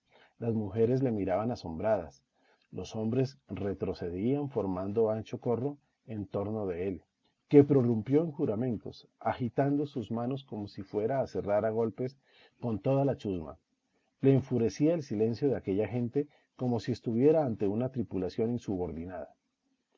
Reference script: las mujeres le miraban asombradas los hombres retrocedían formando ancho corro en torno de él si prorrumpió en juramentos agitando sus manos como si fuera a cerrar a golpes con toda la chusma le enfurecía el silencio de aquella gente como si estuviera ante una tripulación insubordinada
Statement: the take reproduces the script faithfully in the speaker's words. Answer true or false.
false